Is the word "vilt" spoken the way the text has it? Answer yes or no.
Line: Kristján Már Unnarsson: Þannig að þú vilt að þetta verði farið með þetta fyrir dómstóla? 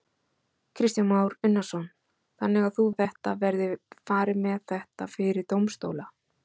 no